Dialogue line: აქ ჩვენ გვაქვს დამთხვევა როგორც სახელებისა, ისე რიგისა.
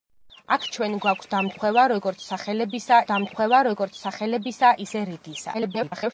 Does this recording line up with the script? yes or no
no